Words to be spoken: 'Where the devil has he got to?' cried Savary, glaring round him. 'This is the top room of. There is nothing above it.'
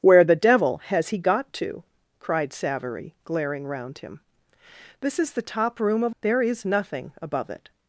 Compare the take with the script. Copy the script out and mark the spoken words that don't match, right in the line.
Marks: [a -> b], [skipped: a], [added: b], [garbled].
'Where the devil has he got to?' cried Savary, glaring round him. 'This is the top room of. There is nothing above it.'